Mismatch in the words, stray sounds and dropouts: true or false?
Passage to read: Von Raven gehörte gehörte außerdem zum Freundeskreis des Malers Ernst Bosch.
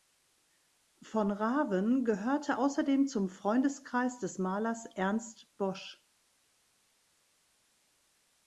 true